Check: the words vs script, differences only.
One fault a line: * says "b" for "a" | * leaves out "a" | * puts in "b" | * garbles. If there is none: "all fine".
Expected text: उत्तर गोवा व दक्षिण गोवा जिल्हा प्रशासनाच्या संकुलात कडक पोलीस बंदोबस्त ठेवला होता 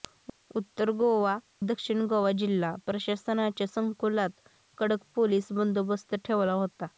* leaves out "व"